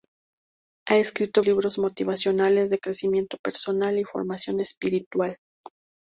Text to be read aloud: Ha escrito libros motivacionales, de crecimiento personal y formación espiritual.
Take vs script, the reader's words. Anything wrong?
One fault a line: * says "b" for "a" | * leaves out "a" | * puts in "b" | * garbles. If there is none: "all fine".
all fine